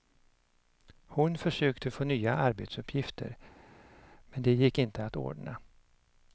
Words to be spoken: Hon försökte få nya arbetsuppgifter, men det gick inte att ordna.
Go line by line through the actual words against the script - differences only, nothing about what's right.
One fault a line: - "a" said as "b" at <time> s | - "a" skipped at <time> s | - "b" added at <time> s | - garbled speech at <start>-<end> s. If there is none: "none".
none